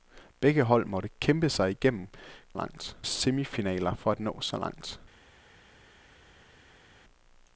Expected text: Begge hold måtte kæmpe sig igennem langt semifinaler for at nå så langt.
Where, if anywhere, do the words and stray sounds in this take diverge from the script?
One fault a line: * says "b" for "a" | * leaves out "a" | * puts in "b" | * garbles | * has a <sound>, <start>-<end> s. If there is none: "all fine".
all fine